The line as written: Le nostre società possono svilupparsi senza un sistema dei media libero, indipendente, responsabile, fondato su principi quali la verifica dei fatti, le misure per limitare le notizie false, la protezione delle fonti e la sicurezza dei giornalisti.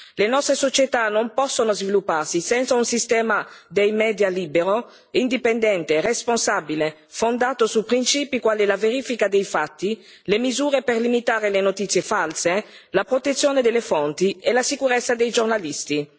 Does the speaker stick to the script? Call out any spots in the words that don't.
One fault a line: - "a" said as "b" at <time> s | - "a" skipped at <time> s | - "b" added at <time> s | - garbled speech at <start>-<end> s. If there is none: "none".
- "non" added at 1.1 s